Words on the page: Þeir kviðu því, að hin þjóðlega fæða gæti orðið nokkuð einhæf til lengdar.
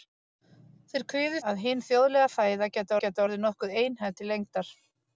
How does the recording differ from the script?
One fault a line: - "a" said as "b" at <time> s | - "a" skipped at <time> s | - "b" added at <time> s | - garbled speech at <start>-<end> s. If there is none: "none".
- "því" skipped at 1.4 s
- "gæti" added at 3.0 s